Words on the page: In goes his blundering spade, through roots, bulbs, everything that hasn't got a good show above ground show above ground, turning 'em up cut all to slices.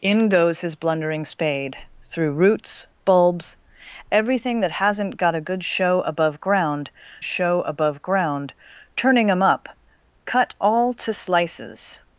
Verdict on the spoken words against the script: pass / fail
pass